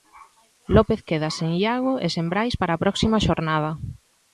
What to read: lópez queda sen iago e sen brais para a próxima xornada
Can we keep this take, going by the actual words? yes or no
yes